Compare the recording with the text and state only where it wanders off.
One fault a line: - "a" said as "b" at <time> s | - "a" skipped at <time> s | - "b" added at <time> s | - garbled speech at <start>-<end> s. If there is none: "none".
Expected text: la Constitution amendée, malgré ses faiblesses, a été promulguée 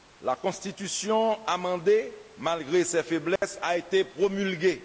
none